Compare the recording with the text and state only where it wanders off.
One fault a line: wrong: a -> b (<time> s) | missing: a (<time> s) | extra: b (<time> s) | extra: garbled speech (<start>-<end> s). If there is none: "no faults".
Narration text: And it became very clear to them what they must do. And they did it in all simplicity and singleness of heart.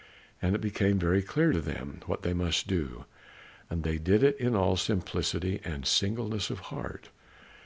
no faults